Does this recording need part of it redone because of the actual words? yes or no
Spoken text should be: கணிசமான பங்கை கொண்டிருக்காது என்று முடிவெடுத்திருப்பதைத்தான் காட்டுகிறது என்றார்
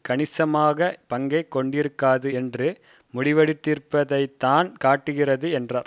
no